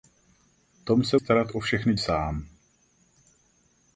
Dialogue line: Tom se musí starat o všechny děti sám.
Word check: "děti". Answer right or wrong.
wrong